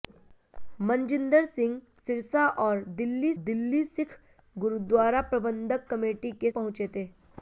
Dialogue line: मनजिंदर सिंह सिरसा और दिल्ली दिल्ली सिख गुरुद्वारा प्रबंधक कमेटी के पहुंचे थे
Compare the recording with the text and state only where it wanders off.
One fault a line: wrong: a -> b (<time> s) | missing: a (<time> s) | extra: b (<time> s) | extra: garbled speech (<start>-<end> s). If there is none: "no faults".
no faults